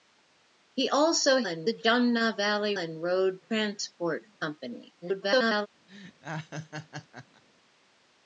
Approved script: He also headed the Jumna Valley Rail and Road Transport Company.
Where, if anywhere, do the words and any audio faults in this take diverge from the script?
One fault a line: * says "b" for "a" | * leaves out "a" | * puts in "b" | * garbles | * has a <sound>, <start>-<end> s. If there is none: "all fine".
* says "and" for "headed"
* leaves out "Rail"
* garbles
* has a laugh, 5.9-7.4 s